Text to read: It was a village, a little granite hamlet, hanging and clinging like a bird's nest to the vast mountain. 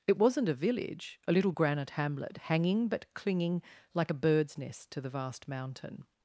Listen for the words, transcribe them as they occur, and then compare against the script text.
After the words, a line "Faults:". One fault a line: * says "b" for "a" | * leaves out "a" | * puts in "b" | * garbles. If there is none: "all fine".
It wasn't a village, a little granite hamlet, hanging but clinging like a bird's nest to the vast mountain.
Faults:
* says "wasn't" for "was"
* says "but" for "and"